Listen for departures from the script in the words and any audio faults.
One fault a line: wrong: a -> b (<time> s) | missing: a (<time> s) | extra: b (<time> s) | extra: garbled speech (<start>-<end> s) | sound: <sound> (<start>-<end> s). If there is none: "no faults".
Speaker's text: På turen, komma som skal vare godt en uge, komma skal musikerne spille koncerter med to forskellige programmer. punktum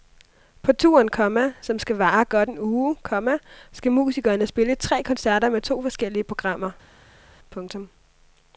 extra: tre (4.7 s)